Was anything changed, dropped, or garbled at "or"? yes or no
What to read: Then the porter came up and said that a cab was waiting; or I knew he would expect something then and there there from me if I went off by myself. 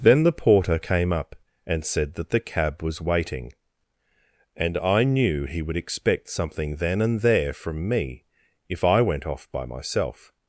yes